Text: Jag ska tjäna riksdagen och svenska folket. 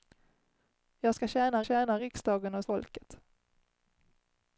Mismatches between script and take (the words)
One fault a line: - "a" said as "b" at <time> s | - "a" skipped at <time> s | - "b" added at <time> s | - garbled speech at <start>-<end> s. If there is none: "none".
- "tjäna" added at 1.6 s
- "svenska" skipped at 2.7 s